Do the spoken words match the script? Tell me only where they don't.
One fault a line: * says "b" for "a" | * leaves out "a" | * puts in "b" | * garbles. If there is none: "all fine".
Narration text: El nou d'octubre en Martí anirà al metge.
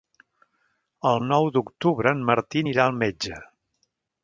all fine